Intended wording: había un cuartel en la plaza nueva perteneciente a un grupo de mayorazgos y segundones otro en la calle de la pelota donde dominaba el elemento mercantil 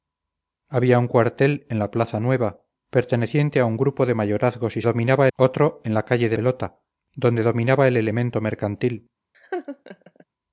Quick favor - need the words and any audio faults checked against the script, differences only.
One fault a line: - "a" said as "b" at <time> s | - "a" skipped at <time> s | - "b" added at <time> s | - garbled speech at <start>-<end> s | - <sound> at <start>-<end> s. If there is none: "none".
- "segundones" said as "dominaba" at 4.8 s
- "la" skipped at 6.4 s
- laugh at 9.3-10.2 s